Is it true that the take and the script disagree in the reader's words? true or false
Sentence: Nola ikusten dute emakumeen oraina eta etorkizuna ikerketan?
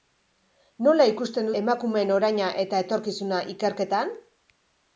true